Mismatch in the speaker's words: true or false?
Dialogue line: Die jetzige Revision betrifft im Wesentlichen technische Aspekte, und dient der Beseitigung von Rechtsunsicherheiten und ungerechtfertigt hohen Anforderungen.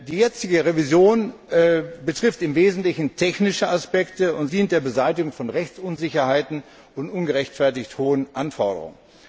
false